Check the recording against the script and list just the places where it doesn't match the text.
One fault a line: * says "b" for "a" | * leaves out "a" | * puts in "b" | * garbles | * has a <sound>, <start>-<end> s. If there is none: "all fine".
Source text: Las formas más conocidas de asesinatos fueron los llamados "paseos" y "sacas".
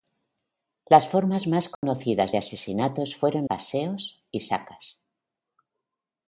* has a dropout, 1.7-1.8 s
* leaves out "los llamados"